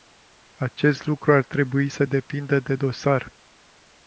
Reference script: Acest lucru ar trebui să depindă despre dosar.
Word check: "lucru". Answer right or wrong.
right